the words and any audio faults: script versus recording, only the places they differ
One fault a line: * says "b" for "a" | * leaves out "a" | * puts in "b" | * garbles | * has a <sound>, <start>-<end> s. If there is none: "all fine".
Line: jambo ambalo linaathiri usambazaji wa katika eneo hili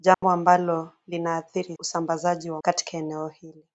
* has a dropout, 0.1-0.2 s